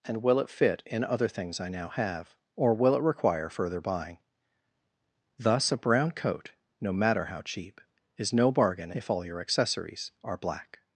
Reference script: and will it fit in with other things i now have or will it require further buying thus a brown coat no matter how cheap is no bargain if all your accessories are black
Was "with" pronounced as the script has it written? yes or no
no